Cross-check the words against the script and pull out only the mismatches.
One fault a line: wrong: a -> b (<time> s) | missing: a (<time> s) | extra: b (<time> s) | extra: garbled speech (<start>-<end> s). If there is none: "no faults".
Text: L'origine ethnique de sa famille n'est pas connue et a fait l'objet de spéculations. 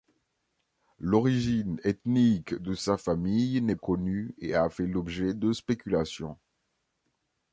missing: pas (3.8 s)